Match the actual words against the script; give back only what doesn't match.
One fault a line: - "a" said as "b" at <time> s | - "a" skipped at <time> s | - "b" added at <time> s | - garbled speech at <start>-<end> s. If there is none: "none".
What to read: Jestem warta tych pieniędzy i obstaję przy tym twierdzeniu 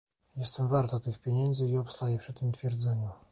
none